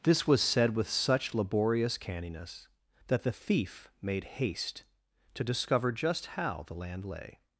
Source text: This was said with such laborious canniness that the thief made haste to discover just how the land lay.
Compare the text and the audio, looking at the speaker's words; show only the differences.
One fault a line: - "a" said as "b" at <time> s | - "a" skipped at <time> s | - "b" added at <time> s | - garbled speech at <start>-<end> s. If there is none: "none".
none